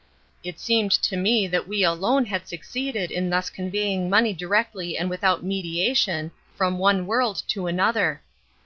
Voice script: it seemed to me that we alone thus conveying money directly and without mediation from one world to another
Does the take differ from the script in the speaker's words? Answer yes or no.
yes